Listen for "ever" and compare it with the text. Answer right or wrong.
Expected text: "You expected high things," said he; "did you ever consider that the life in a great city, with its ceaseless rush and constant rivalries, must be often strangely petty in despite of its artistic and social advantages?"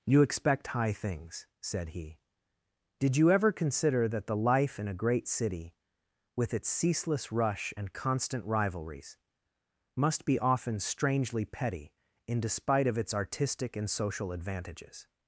right